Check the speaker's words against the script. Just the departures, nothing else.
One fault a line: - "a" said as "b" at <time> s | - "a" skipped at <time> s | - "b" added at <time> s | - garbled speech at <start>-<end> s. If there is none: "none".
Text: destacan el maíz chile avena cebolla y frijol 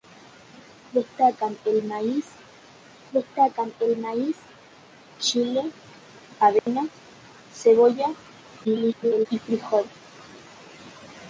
- "destacan el maíz" added at 3.1 s
- garbled speech at 8.6-9.3 s